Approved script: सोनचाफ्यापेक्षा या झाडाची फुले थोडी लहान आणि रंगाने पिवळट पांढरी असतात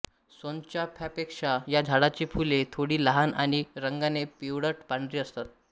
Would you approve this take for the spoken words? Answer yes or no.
yes